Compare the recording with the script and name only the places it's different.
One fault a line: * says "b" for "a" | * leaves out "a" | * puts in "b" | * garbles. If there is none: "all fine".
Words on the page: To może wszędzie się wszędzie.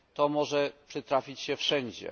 * says "przytrafić" for "wszędzie"